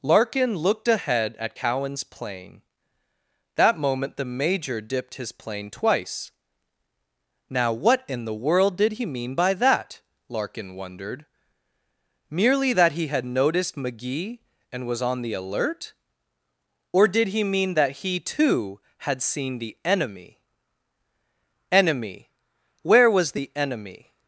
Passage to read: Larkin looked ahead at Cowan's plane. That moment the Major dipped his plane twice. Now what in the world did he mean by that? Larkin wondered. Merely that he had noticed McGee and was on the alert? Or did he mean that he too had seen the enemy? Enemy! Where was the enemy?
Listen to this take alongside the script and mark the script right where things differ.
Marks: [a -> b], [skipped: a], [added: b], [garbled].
Larkin looked ahead at Cowan's plane. That moment the Major dipped his plane twice. Now what in the world did he mean by that? Larkin wondered. Merely that he had noticed McGee and was on the alert? Or did he mean that he too had seen the enemy? Enemy! Where was the enemy?